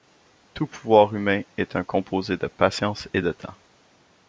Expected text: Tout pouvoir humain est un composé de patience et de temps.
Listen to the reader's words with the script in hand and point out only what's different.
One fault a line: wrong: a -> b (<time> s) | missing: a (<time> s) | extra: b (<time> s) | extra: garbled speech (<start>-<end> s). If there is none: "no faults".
no faults